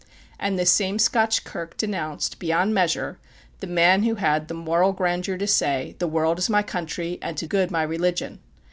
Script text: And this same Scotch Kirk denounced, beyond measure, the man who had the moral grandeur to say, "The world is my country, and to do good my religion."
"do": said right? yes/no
no